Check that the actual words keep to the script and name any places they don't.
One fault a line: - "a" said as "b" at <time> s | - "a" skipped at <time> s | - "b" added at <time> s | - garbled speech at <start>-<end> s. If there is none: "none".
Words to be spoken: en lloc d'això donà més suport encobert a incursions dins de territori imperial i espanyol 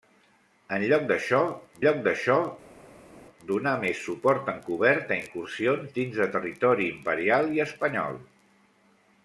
- "lloc d'això" added at 1.8 s